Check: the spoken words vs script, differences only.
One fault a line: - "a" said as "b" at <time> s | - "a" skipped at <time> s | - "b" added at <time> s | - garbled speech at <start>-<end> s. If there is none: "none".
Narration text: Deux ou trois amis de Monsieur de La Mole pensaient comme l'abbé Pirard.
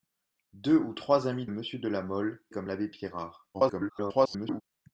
- "de" skipped at 1.4 s
- "pensaient" skipped at 2.4 s
- garbled speech at 3.5-4.6 s